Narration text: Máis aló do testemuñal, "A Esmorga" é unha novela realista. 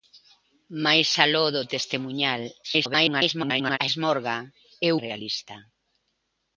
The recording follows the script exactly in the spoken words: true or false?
false